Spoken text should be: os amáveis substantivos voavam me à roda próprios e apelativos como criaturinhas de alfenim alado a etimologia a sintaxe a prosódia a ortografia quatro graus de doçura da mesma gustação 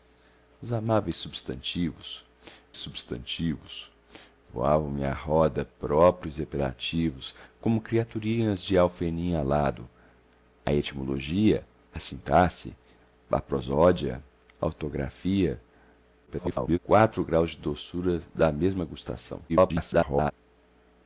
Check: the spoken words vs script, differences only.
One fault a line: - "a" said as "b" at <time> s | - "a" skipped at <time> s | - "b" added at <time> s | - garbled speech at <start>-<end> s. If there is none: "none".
- "substantivos" added at 2.8 s
- garbled speech at 16.3-16.8 s
- garbled speech at 19.5-20.3 s